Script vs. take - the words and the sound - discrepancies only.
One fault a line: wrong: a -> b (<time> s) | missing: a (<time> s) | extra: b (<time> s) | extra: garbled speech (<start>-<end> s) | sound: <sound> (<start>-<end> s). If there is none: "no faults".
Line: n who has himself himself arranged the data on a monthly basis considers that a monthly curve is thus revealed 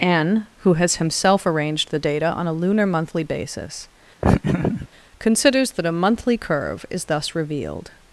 missing: himself (1.4 s)
extra: lunar (2.5 s)
sound: laugh (4.2-4.9 s)